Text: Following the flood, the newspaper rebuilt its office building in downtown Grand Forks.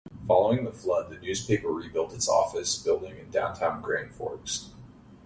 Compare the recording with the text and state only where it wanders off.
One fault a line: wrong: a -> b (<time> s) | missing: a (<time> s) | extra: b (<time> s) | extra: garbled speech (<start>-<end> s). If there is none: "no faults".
no faults